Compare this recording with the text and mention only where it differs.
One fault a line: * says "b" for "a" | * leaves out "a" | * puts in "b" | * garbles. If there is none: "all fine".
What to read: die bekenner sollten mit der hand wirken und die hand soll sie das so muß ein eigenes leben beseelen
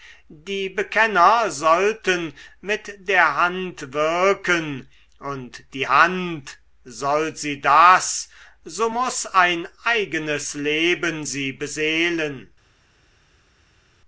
* puts in "sie"